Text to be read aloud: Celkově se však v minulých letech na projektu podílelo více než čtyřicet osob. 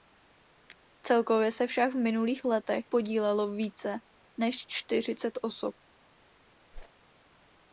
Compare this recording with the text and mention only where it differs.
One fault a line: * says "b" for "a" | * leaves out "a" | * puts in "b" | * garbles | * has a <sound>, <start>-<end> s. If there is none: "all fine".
* leaves out "na projektu"
* has a whoosh, 6.7-6.9 s